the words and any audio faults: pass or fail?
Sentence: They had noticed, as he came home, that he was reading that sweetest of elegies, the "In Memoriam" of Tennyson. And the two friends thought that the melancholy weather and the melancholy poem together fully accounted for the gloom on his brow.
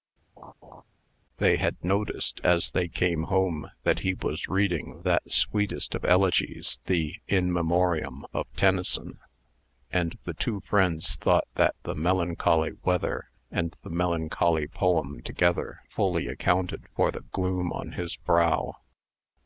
fail